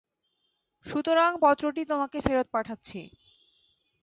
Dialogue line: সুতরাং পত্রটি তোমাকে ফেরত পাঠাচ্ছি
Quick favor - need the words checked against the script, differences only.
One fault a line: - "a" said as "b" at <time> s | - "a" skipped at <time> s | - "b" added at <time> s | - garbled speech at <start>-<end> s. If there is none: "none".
none